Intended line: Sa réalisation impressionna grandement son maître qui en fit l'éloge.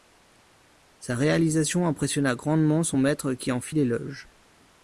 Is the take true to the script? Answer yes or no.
yes